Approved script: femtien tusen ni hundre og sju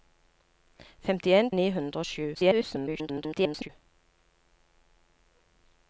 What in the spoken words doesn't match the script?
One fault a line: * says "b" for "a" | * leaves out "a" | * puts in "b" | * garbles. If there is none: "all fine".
* leaves out "tusen"
* garbles